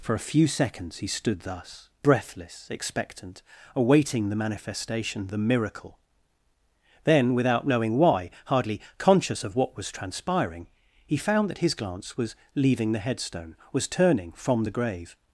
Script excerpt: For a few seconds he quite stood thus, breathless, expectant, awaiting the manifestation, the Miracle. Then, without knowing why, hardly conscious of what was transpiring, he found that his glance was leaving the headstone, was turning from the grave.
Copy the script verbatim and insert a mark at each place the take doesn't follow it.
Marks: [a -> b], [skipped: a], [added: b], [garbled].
For a few seconds he [skipped: quite] stood thus, breathless, expectant, awaiting the manifestation, the Miracle. Then, without knowing why, hardly conscious of what was transpiring, he found that his glance was leaving the headstone, was turning from the grave.